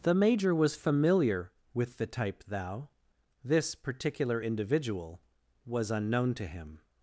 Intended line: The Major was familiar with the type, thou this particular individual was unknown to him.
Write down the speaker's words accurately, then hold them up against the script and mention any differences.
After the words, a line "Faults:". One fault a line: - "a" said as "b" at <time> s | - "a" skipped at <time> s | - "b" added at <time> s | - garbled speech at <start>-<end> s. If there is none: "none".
The Major was familiar with the type, thou this particular individual was unknown to him.
Faults:
none